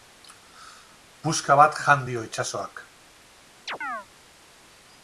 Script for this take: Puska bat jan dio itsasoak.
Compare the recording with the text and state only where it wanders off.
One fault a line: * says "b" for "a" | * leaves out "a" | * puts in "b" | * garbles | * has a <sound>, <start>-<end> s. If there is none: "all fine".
* has a chirp, 3.7-4.1 s